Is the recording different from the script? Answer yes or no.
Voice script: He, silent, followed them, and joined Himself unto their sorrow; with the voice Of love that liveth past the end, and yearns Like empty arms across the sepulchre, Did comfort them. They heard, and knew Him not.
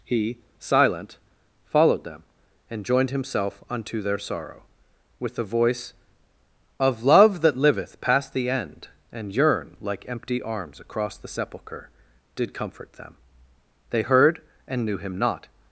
yes